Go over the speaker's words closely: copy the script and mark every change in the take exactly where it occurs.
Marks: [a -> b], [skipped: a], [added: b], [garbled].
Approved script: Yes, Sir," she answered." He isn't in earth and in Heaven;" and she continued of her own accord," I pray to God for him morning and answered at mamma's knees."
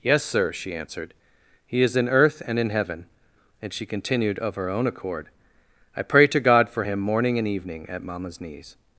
Yes, Sir," she answered." He [isn't -> is] in earth and in Heaven;" and she continued of her own accord," I pray to God for him morning and [answered -> evening] at mamma's knees."